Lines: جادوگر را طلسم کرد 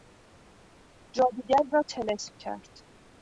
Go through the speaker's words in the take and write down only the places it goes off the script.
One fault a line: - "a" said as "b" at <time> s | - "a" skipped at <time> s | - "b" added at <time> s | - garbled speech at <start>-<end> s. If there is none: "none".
none